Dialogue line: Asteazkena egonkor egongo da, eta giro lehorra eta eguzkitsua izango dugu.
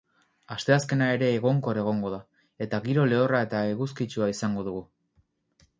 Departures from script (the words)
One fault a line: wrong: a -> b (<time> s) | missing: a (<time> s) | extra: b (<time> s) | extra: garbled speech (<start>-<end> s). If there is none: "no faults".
extra: ere (1.2 s)